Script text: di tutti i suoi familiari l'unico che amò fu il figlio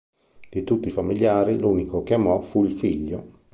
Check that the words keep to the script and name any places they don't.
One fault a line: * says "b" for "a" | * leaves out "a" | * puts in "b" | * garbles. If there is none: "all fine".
* leaves out "suoi"